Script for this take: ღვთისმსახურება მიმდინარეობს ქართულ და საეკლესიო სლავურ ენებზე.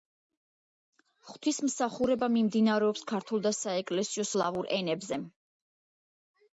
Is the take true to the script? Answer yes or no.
yes